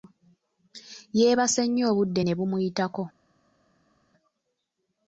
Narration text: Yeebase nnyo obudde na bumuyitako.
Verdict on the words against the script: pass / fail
fail